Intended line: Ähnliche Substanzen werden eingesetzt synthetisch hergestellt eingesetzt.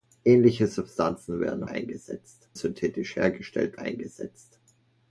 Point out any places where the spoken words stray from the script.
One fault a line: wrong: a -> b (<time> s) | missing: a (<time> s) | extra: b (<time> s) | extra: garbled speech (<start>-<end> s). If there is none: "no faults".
no faults